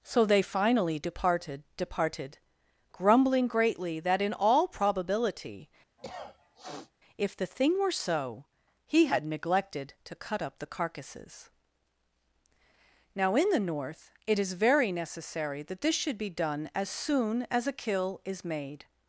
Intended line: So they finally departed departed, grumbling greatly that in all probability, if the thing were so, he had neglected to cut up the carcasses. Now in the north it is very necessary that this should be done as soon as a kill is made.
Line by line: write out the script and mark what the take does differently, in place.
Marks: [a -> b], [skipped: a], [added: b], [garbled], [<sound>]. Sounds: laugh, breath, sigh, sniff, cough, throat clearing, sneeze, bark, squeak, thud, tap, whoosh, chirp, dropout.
So they finally departed departed, grumbling greatly that in all probability, [cough] if the thing were so, he had neglected to cut up the carcasses. Now in the north it is very necessary that this should be done as soon as a kill is made.